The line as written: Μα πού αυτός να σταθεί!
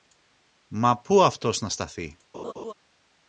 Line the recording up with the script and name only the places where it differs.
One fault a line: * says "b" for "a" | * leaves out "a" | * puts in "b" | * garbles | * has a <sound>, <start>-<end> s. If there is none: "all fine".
* has a laugh, 2.3-2.7 s